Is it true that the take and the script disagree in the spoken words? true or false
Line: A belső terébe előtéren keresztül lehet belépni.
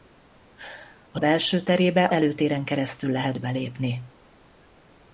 false